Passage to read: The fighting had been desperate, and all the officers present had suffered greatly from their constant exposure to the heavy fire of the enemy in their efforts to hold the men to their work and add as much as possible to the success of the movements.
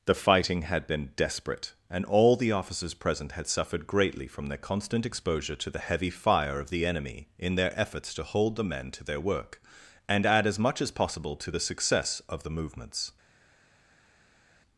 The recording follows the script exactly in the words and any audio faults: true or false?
true